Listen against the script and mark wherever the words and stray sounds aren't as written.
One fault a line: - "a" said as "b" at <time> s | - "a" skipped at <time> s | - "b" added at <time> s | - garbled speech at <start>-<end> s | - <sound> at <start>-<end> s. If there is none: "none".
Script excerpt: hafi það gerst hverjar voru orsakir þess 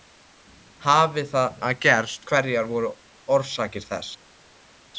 none